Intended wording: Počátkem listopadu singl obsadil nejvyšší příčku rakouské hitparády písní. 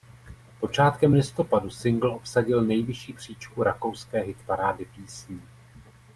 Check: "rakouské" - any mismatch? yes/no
no